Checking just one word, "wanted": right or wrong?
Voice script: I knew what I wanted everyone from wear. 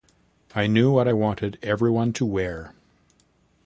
right